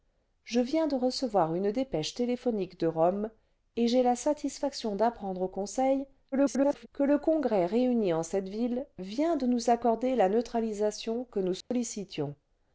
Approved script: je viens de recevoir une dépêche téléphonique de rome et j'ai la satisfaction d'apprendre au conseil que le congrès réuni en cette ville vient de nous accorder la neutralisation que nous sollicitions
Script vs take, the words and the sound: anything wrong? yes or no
yes